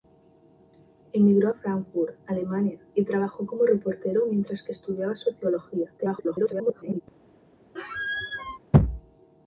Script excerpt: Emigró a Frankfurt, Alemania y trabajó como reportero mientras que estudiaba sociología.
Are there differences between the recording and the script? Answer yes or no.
yes